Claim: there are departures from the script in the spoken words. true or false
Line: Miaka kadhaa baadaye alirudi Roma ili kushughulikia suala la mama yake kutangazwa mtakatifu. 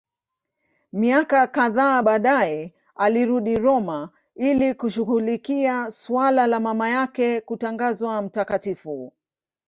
false